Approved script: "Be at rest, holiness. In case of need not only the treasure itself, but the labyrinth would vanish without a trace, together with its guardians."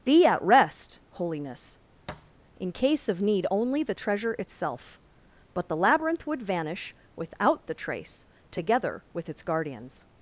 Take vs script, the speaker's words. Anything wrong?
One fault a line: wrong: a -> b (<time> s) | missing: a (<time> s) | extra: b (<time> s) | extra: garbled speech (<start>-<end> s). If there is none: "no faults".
missing: not (3.5 s)
wrong: a -> the (7.7 s)